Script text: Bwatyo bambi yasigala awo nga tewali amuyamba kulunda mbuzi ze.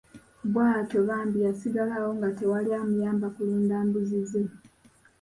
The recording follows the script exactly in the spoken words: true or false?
true